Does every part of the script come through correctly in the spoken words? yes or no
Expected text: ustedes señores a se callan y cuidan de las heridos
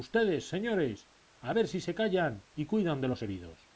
no